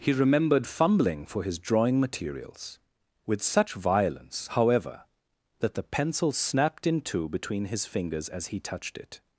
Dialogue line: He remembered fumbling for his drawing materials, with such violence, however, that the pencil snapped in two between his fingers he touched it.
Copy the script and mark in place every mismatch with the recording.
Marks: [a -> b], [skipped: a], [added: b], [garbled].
He remembered fumbling for his drawing materials, with such violence, however, that the pencil snapped in two between his fingers [added: as] he touched it.